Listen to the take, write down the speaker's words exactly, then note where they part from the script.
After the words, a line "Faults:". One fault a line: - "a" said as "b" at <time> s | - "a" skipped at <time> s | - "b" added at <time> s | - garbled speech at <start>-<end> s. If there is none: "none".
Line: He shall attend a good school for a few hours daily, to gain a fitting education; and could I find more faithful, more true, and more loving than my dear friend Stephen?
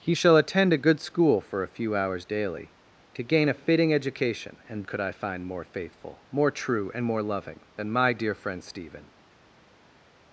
He shall attend a good school for a few hours daily, to gain a fitting education; and could I find more faithful, more true, and more loving than my dear friend Stephen?
Faults:
none